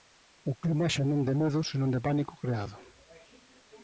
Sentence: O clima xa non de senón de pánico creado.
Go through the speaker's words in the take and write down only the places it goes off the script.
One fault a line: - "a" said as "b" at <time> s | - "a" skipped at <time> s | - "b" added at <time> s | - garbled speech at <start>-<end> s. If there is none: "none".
- "medo" added at 1.4 s